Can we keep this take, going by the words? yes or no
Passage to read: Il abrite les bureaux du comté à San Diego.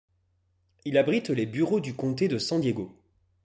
no